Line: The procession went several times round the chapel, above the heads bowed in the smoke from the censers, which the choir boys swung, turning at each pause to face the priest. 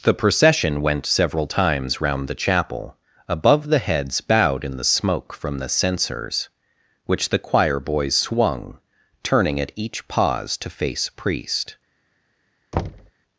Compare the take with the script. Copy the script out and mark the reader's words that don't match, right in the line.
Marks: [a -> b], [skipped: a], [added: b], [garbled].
The procession went several times round the chapel, above the heads bowed in the smoke from the censers, which the choir boys swung, turning at each pause to face [skipped: the] priest.